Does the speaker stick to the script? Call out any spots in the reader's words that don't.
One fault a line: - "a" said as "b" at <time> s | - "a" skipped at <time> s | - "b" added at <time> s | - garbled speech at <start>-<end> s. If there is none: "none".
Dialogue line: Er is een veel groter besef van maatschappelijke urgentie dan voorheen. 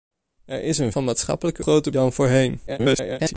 - "veel groter besef" skipped at 0.9 s
- "urgentie" said as "groter" at 1.6 s
- garbled speech at 2.7-3.3 s